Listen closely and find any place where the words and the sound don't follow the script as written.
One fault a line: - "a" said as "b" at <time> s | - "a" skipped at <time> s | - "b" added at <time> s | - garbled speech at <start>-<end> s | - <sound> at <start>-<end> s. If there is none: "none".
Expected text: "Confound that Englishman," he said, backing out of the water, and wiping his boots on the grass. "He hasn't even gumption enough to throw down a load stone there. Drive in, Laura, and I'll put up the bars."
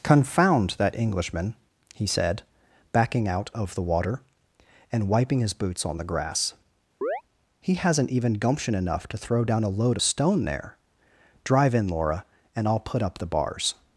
- chirp at 7.0-7.2 s